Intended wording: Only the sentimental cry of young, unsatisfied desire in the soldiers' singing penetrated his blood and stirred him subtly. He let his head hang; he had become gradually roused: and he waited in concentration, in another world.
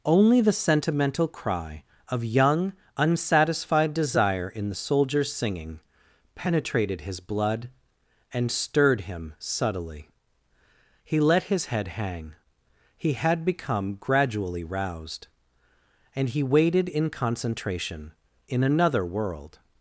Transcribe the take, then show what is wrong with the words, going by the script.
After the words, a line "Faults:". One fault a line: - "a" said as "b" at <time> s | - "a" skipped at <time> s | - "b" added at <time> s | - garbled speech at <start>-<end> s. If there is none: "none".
Only the sentimental cry of young, unsatisfied desire in the soldiers' singing penetrated his blood and stirred him subtly. He let his head hang; he had become gradually roused: and he waited in concentration, in another world.
Faults:
none